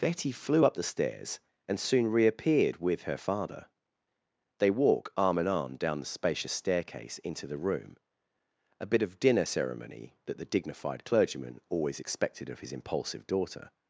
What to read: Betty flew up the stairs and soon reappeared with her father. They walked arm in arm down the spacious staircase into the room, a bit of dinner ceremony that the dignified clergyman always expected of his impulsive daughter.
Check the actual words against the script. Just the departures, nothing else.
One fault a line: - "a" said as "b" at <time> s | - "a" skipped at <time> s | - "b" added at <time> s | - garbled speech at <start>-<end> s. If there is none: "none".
- "walked" said as "walk" at 4.7 s